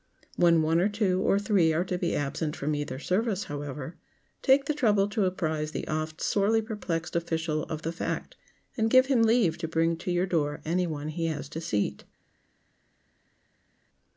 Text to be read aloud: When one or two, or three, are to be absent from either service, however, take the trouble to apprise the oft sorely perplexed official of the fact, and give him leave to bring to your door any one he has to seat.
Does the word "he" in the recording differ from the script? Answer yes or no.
no